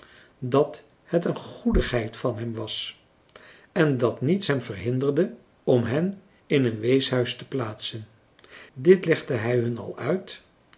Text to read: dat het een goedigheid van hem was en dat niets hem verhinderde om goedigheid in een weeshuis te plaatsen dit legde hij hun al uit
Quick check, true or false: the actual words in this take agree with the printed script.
false